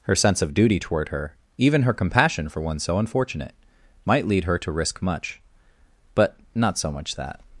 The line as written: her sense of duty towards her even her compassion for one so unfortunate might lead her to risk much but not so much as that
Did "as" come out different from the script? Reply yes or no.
yes